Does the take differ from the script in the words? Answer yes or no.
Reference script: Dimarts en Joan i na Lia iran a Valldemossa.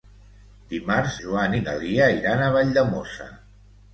yes